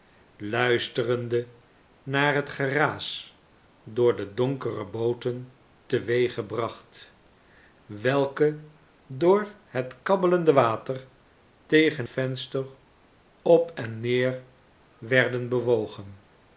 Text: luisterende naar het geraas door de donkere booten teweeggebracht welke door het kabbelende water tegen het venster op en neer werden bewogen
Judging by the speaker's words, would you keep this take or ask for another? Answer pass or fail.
fail